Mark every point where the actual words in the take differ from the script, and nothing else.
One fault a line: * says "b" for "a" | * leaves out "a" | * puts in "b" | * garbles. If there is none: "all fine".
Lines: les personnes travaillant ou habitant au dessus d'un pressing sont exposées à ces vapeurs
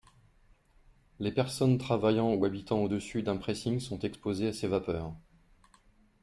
all fine